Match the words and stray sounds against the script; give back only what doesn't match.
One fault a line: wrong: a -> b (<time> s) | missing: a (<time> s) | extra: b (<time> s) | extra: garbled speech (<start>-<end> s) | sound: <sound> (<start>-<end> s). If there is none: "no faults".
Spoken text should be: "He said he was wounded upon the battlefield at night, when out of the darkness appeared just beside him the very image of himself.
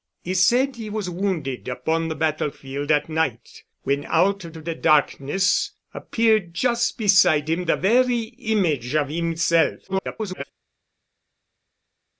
extra: of (4.5 s)
extra: garbled speech (9.9-10.4 s)